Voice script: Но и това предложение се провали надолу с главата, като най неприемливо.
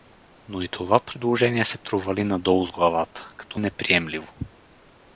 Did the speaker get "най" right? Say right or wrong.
wrong